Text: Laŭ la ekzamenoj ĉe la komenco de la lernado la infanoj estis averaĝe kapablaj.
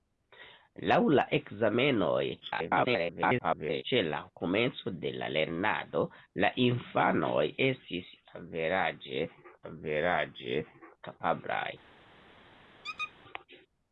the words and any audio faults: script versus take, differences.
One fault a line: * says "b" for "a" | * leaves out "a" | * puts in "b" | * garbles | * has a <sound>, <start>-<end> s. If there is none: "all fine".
* garbles
* puts in "averaĝe"
* has a squeak, 12.8-13.1 s